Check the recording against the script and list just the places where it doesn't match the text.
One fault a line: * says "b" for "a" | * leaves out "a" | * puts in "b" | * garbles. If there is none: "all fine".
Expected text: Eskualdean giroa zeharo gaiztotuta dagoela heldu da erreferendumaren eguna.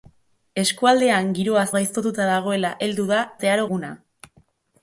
* leaves out "zeharo"
* says "zeharo" for "erreferendumaren"